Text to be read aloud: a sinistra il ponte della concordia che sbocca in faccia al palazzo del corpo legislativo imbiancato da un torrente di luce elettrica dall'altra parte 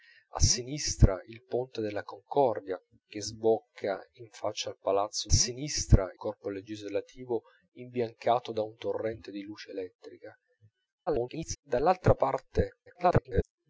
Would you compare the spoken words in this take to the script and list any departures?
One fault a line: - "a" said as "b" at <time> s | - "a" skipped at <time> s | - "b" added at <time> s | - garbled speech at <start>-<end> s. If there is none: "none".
- "del" said as "sinistra" at 5.3 s
- garbled speech at 11.1-11.6 s
- garbled speech at 12.9-13.4 s